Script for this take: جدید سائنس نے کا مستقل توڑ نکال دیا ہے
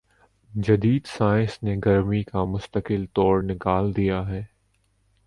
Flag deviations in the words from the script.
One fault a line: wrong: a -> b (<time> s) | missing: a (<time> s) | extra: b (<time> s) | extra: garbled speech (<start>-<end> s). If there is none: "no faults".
extra: گرمی (1.9 s)